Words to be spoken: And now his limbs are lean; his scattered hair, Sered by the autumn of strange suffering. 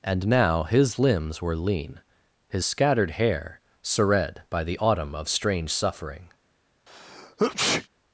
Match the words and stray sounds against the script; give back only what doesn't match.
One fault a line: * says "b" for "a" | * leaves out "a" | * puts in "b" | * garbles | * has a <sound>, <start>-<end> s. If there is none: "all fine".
* says "were" for "are"
* has a sneeze, 6.9-7.9 s